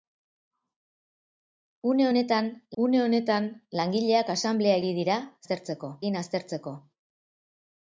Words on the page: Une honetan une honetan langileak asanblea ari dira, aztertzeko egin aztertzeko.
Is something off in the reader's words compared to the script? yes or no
no